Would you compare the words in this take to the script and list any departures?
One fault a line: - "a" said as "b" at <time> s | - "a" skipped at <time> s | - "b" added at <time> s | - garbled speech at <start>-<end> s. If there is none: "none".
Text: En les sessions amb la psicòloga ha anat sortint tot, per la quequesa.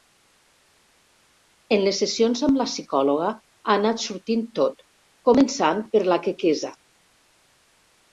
- "començant" added at 5.3 s